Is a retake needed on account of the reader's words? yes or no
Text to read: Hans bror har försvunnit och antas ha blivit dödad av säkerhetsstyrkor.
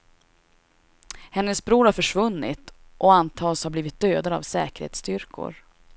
yes